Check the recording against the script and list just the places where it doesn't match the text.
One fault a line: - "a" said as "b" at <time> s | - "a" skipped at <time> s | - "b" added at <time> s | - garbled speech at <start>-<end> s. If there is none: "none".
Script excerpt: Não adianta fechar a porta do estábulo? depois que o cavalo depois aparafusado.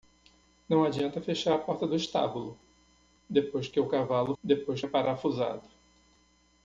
none